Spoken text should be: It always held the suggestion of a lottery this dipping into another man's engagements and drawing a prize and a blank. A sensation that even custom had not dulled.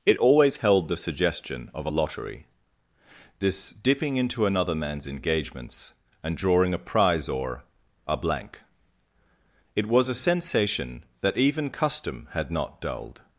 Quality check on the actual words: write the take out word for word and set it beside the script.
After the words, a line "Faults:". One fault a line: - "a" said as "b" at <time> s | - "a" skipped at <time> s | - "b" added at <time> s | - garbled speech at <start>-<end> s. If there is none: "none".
It always held the suggestion of a lottery this dipping into another man's engagements and drawing a prize or a blank. It was a sensation that even custom had not dulled.
Faults:
- "and" said as "or" at 7.3 s
- "It was" added at 9.7 s